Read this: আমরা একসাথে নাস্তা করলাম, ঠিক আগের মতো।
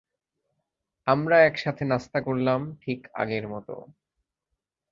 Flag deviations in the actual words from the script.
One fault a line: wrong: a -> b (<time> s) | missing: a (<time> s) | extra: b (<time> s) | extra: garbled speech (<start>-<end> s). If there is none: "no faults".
no faults